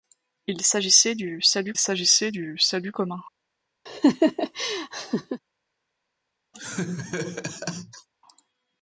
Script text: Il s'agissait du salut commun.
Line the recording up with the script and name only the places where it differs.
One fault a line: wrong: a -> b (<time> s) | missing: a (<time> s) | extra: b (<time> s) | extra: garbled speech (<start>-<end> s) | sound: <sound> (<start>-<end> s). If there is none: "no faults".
extra: s'agissait du salut (1.8 s)
sound: laugh (3.9-5.4 s)
sound: laugh (6.5-8.1 s)